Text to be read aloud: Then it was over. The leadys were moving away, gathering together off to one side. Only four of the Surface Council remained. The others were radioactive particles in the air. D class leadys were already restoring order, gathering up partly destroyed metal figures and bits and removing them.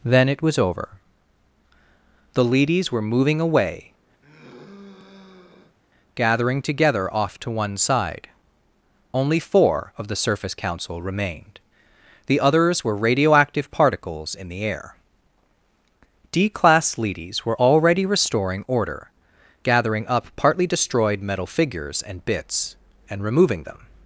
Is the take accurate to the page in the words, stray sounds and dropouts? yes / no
no